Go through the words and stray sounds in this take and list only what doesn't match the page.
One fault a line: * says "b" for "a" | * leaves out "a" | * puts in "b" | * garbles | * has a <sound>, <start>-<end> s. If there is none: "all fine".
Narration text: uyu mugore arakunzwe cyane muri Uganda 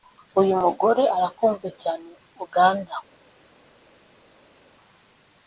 * leaves out "muri"